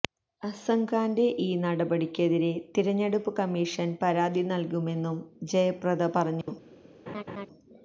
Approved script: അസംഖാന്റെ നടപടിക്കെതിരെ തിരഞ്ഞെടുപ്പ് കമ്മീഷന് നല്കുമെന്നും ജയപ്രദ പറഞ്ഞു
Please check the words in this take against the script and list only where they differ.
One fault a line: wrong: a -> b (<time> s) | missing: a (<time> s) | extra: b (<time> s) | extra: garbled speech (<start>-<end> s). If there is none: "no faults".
extra: ഈ (1.4 s)
extra: പരാതി (4.0 s)